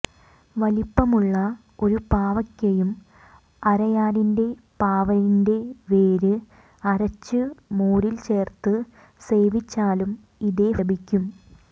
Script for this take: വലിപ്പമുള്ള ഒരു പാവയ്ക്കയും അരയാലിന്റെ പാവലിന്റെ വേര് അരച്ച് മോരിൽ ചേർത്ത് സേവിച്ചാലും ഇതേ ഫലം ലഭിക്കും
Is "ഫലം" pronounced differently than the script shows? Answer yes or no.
yes